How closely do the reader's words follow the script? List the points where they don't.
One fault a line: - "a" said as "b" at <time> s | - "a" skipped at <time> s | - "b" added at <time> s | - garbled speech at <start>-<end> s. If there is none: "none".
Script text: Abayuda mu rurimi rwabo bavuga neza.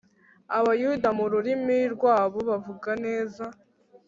none